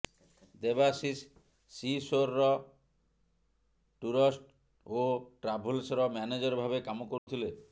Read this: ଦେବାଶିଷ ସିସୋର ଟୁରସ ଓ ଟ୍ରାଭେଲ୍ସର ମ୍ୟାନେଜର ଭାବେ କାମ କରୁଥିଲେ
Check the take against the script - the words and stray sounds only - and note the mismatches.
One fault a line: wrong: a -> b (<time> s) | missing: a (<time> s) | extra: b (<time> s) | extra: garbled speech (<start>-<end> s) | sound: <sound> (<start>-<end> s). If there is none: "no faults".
sound: dropout (7.2-7.3 s)